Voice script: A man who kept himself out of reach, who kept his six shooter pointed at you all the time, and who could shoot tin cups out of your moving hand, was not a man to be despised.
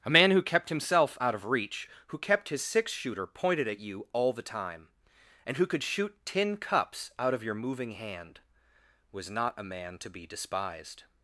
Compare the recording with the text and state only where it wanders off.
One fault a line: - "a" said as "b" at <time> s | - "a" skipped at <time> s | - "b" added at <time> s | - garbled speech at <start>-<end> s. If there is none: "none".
none